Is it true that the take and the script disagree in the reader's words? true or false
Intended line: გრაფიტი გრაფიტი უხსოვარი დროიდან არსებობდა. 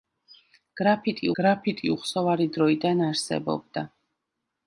false